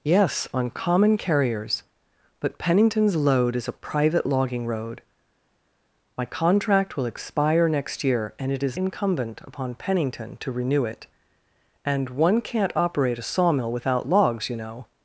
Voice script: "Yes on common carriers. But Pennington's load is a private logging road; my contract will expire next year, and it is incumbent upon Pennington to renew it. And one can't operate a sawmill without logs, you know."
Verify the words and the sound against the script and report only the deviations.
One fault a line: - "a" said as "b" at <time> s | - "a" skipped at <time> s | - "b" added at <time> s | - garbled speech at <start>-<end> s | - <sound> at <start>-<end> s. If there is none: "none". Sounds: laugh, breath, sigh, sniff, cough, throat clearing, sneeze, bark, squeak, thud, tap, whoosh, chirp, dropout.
none